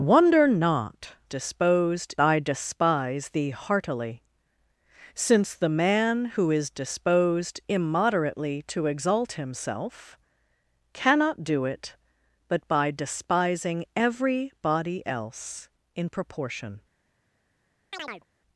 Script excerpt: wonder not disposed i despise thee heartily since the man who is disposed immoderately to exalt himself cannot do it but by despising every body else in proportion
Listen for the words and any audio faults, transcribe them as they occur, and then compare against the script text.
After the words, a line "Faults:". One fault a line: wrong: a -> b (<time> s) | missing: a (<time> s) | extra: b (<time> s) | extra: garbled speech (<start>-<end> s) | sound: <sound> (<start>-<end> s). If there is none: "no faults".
wonder not disposed i despise thee heartily since the man who is disposed immoderately to exalt himself cannot do it but by despising every body else in proportion
Faults:
sound: chirp (17.9-18.2 s)